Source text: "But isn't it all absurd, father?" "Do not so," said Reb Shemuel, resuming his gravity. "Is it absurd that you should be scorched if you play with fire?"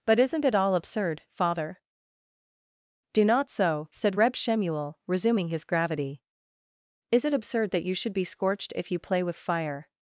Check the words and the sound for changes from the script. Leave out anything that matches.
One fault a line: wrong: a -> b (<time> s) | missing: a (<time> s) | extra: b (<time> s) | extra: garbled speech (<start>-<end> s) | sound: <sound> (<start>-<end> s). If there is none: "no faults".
no faults